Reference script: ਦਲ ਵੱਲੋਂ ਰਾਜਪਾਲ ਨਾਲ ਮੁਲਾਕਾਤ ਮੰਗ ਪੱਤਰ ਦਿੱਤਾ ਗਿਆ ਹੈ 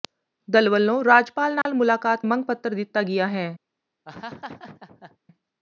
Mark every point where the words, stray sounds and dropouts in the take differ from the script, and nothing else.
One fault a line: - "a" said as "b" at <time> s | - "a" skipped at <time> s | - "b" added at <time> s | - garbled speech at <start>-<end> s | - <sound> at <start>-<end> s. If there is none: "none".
- dropout at 1.6-1.7 s
- laugh at 4.0-5.2 s